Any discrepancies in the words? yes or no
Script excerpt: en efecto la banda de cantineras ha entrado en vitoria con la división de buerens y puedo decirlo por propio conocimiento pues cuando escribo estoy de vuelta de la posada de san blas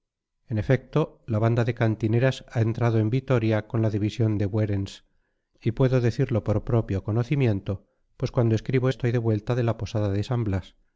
no